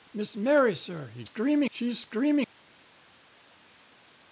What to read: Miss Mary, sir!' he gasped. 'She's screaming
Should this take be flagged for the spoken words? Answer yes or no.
yes